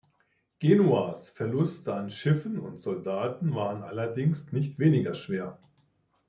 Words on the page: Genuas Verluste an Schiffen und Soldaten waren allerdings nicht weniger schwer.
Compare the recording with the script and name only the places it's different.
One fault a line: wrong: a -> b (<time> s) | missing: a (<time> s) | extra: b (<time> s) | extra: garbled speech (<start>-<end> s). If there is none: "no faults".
no faults